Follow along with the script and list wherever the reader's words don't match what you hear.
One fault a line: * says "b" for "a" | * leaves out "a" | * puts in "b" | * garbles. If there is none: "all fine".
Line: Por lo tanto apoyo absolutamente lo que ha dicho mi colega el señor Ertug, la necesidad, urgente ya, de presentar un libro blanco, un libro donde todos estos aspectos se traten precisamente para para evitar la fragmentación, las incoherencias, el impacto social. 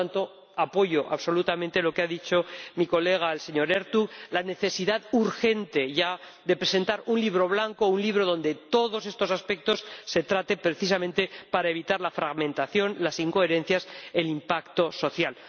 * leaves out "para"